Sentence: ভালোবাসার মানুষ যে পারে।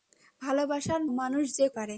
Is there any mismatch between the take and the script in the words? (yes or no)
no